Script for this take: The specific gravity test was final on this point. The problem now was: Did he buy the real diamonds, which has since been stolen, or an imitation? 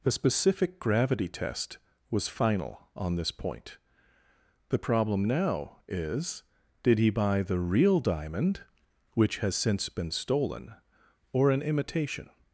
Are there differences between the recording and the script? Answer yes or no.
yes